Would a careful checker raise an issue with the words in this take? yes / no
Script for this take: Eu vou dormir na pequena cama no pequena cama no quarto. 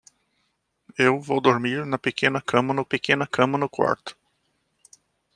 no